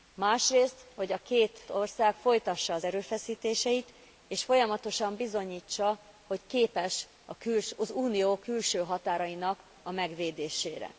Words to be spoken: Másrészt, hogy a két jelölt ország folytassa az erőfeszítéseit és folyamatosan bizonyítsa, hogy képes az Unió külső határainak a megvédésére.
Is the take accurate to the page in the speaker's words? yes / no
no